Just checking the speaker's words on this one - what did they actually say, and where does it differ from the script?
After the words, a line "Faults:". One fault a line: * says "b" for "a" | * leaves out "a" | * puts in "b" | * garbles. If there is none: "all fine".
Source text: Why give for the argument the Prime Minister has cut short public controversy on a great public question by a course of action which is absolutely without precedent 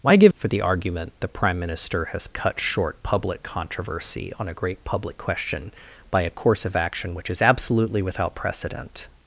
Why give for the argument the Prime Minister has cut short public controversy on a great public question by a course of action which is absolutely without precedent
Faults:
all fine